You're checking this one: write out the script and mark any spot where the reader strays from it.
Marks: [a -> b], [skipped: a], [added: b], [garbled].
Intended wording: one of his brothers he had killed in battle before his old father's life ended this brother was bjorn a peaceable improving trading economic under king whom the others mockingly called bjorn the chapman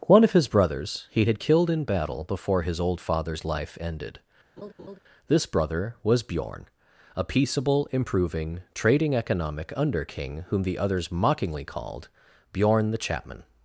one of his brothers he had killed in battle before his old father's life ended this brother was bjorn a peaceable improving trading economic under king whom the others mockingly called bjorn the chapman